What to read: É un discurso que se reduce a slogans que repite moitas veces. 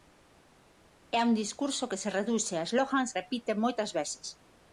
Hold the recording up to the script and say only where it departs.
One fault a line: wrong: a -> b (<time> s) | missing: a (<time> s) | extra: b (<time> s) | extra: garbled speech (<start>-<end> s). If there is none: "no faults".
missing: que (3.1 s)